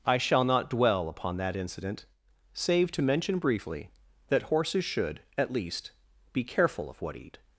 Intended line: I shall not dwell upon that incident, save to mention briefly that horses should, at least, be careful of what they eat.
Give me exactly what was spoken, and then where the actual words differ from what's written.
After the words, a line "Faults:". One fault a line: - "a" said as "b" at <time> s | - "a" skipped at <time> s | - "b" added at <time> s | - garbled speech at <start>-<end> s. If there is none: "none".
I shall not dwell upon that incident, save to mention briefly that horses should, at least, be careful of what eat.
Faults:
- "they" skipped at 7.2 s